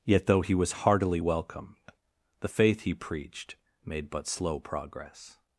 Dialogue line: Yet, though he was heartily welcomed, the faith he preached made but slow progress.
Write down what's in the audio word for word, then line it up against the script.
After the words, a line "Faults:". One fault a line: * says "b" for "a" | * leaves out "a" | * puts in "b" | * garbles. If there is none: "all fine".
Yet, though he was heartily welcomed, the faith he preached made but slow progress.
Faults:
all fine